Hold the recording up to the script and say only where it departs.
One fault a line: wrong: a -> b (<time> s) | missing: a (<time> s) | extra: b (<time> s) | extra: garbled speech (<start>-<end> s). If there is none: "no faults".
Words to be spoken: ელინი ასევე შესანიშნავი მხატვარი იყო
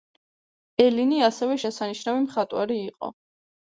no faults